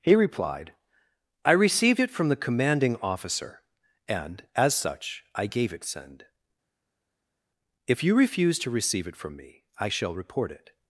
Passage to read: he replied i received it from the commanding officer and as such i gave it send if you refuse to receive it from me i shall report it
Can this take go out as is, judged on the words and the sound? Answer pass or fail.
pass